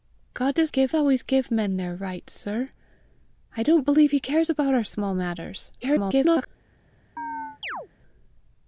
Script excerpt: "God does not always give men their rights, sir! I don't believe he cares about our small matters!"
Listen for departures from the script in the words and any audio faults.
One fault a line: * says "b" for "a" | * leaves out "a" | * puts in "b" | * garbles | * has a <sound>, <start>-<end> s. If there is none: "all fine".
* says "give" for "not"
* garbles
* has a chirp, 7.2-7.9 s